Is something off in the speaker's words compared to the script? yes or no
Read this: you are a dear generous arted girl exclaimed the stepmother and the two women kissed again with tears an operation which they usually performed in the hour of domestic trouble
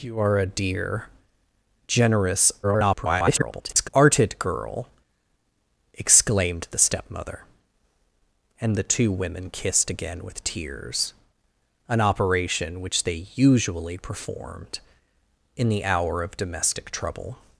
yes